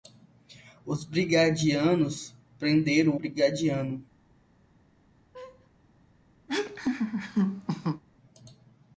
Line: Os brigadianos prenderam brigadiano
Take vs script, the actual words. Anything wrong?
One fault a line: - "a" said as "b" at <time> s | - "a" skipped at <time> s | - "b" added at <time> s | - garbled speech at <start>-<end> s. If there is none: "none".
none